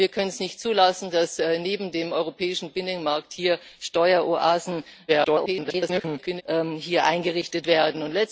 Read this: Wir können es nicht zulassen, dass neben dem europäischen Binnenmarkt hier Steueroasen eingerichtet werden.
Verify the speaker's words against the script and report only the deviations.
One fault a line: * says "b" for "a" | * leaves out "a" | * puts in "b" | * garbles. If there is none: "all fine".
* garbles